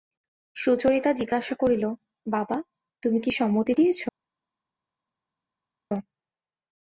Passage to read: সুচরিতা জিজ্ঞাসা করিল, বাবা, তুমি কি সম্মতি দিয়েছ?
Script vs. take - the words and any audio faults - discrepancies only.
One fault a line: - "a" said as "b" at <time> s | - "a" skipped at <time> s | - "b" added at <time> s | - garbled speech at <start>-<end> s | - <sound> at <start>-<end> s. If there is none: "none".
none